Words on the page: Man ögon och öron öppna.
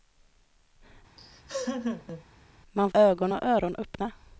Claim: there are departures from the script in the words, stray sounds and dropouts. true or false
true